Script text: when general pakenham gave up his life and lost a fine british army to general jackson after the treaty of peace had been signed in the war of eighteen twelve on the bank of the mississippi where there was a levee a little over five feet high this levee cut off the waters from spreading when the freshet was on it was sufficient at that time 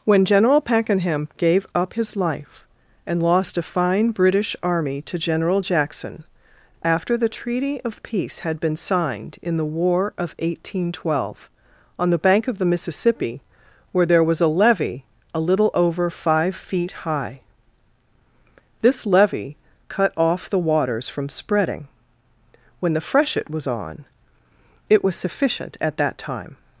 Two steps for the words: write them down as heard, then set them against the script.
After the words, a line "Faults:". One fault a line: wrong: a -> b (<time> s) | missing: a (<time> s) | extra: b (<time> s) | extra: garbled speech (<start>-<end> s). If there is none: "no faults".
when general pakenham gave up his life and lost a fine british army to general jackson after the treaty of peace had been signed in the war of eighteen twelve on the bank of the mississippi where there was a levee a little over five feet high this levee cut off the waters from spreading when the freshet was on it was sufficient at that time
Faults:
no faults